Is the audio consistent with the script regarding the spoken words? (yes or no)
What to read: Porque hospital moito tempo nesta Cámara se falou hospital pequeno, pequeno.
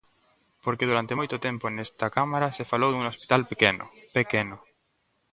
no